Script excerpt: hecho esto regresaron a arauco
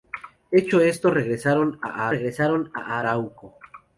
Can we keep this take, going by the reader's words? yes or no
no